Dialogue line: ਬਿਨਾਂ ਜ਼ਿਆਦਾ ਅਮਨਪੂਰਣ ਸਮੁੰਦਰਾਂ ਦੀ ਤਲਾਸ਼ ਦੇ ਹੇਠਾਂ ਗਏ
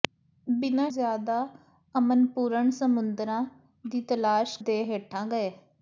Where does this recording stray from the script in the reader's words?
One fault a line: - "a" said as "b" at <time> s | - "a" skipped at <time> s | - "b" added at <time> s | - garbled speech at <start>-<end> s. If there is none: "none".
none